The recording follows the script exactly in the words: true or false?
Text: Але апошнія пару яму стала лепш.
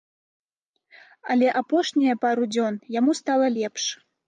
false